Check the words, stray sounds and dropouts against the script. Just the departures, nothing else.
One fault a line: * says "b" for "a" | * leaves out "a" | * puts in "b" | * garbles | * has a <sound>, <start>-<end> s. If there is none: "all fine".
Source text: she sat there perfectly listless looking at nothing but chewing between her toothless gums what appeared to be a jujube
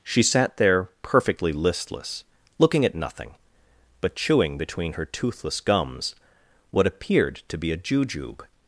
all fine